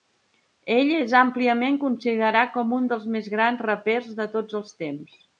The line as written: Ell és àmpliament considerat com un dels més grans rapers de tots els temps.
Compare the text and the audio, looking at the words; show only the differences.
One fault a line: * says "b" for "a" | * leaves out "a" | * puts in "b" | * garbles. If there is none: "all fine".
all fine